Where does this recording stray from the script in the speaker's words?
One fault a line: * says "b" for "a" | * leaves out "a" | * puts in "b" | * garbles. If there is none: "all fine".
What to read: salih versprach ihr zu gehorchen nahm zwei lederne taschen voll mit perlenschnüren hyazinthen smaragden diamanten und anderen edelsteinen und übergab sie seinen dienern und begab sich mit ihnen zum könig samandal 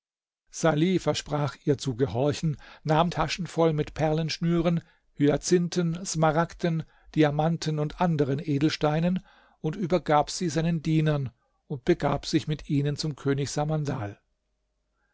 * leaves out "zwei lederne"